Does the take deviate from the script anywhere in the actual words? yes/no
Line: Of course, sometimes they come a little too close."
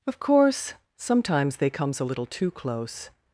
yes